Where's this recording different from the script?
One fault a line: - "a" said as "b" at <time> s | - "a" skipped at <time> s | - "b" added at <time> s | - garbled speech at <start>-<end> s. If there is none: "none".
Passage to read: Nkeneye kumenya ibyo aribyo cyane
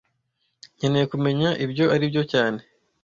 none